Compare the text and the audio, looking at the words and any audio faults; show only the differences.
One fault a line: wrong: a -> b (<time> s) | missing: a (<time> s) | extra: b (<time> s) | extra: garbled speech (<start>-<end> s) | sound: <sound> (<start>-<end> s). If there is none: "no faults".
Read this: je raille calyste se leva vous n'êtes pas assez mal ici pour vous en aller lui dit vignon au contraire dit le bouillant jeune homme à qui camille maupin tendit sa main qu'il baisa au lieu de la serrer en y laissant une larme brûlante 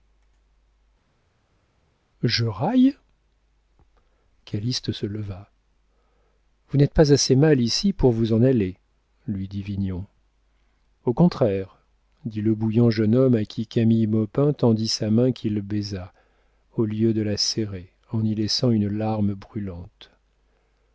no faults